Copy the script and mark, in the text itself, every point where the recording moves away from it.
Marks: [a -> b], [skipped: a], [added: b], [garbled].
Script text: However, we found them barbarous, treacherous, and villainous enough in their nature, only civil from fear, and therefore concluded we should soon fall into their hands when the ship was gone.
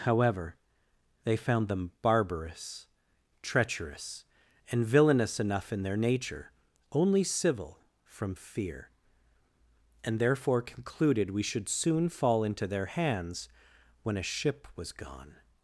However, [we -> they] found them barbarous, treacherous, and villainous enough in their nature, only civil from fear, and therefore concluded we should soon fall into their hands when [the -> a] ship was gone.